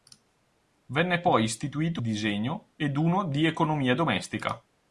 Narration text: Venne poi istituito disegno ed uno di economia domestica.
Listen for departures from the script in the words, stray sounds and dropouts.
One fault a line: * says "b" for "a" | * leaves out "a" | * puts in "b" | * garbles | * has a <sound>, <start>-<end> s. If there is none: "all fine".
all fine